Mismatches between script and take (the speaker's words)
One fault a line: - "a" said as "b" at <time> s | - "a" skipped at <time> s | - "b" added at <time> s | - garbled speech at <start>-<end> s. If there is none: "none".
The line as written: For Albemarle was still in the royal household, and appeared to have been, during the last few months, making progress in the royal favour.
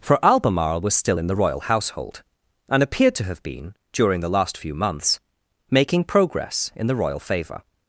none